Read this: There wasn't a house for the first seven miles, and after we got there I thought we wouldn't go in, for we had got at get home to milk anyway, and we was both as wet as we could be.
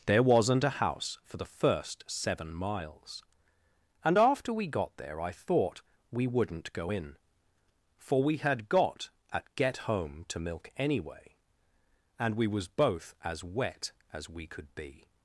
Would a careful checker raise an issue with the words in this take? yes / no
no